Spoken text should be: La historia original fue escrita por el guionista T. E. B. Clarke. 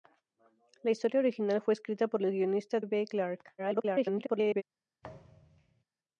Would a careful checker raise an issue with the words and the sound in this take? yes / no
yes